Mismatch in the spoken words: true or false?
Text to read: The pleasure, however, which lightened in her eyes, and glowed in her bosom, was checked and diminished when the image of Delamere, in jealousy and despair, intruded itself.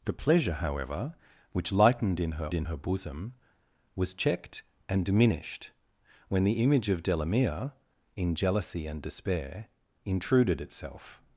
true